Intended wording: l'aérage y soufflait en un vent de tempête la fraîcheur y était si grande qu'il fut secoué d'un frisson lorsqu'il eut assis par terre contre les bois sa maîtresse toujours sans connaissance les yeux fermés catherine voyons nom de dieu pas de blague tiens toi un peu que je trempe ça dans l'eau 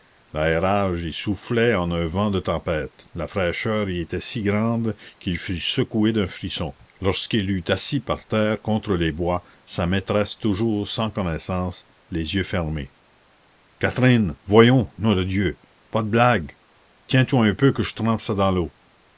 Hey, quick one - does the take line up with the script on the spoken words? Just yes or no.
yes